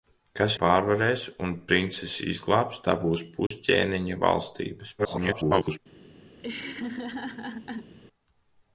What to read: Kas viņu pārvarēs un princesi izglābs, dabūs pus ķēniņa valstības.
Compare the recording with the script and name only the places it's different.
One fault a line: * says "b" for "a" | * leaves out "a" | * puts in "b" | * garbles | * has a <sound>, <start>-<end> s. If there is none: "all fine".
* leaves out "viņu"
* has a dropout, 3.5-3.5 s
* garbles
* has a laugh, 6.4-7.9 s